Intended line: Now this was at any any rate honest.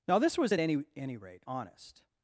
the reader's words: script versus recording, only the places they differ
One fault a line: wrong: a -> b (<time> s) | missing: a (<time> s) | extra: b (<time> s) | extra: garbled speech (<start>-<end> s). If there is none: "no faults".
no faults